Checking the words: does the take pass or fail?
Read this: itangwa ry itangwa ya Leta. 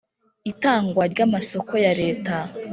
fail